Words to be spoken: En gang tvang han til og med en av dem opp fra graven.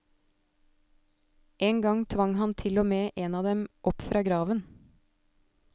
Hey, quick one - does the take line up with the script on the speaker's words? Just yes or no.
yes